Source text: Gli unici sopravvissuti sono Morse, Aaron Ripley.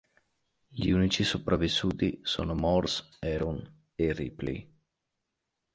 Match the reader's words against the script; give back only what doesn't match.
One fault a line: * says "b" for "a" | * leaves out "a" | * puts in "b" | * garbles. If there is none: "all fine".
* puts in "e"